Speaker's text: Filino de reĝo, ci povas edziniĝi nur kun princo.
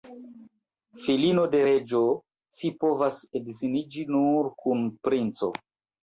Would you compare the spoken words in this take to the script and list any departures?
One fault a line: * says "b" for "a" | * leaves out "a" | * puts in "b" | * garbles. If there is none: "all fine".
all fine